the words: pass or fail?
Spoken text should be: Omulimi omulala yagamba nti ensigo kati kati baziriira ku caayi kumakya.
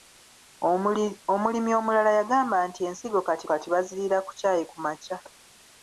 pass